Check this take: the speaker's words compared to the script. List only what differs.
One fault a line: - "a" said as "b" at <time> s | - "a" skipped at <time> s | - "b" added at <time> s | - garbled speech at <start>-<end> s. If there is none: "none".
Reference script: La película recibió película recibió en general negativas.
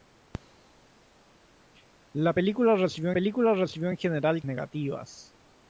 none